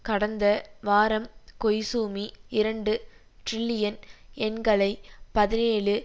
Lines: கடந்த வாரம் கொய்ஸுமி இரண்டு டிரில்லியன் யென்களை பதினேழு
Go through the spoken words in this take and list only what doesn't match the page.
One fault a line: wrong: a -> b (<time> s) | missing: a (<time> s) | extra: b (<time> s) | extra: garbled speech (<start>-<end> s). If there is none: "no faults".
no faults